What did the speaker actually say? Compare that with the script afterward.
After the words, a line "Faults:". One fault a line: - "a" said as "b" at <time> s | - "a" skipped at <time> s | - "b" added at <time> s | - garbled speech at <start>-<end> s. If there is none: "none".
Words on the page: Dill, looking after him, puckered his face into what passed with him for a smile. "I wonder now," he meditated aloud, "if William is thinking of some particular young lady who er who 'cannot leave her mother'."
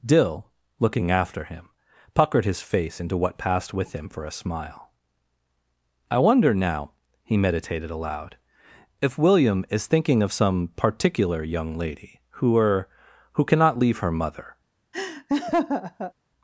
Dill, looking after him, puckered his face into what passed with him for a smile. "I wonder now," he meditated aloud, "if William is thinking of some particular young lady who er who 'cannot leave her mother'."
Faults:
none